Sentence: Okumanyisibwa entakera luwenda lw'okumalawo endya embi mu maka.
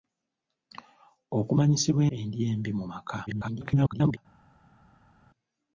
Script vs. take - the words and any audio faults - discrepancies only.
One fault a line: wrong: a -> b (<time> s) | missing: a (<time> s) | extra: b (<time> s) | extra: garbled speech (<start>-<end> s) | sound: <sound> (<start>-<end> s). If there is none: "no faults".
missing: entakera luwenda lw'okumalawo (2.0 s)
extra: garbled speech (3.3-4.2 s)